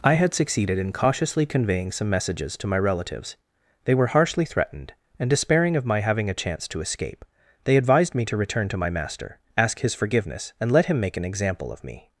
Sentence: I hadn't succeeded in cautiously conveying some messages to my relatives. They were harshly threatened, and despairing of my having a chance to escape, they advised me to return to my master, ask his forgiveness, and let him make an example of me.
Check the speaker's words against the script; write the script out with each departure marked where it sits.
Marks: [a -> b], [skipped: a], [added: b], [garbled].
I [hadn't -> had] succeeded in cautiously conveying some messages to my relatives. They were harshly threatened, and despairing of my having a chance to escape, they advised me to return to my master, ask his forgiveness, and let him make an example of me.